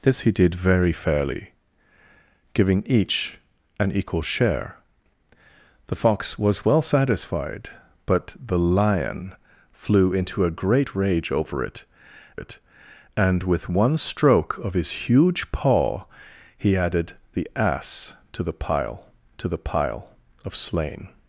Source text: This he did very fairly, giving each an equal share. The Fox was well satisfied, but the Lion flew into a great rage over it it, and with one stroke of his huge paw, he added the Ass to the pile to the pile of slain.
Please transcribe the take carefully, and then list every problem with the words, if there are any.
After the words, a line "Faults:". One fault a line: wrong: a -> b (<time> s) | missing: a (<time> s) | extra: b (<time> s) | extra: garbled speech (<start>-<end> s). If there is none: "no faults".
This he did very fairly, giving each an equal share. The Fox was well satisfied, but the Lion flew into a great rage over it it, and with one stroke of his huge paw, he added the Ass to the pile to the pile of slain.
Faults:
no faults